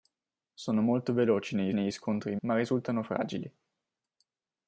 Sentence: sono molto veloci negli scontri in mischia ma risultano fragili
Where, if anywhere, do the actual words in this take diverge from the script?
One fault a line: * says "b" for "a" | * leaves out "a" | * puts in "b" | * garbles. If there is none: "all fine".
* puts in "negli"
* leaves out "mischia"